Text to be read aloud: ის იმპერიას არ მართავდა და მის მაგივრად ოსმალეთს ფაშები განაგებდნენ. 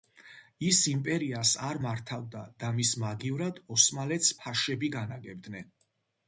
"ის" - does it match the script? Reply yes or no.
yes